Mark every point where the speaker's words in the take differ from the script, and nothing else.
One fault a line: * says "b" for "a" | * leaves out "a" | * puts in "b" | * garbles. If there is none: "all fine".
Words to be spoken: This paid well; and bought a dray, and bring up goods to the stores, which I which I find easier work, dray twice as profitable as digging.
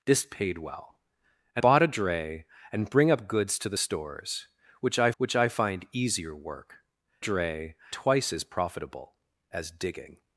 all fine